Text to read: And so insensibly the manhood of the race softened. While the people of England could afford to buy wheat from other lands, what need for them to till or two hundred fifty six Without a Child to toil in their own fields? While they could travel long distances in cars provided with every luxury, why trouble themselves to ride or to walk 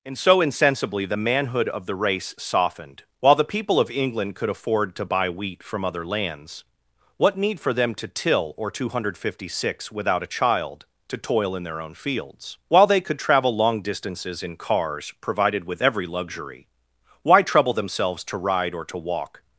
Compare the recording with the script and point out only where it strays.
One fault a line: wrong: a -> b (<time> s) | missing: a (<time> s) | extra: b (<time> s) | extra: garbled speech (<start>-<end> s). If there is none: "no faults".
no faults